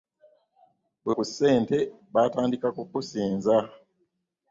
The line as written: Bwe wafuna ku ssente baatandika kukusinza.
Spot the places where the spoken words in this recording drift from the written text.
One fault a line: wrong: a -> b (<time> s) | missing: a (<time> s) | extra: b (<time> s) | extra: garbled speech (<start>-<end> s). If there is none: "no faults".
missing: wafuna (1.1 s)